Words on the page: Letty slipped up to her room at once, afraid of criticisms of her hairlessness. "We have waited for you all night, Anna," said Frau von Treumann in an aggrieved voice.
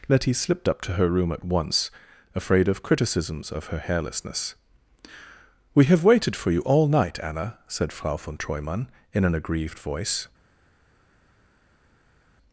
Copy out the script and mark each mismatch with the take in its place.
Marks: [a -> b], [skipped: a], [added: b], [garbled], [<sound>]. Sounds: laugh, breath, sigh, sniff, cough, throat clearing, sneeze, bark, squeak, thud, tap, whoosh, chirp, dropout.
Letty slipped up to her room at once, afraid of criticisms of her hairlessness. "We have waited for you all night, Anna," said Frau von Treumann in an aggrieved voice.